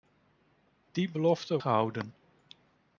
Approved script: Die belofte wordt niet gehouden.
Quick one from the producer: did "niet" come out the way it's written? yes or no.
no